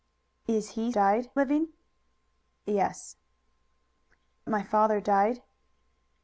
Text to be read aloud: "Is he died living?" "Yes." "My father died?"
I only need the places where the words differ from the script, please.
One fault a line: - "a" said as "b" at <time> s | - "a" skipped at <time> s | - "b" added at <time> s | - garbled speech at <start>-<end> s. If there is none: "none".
none